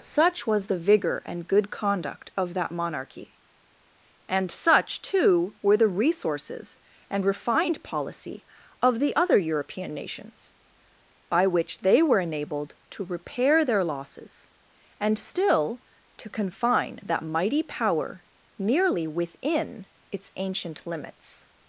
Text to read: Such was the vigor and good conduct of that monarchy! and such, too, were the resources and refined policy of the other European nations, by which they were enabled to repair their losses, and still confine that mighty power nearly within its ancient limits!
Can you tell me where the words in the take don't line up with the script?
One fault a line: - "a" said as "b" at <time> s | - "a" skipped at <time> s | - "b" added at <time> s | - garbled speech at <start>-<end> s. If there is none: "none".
- "to" added at 16.2 s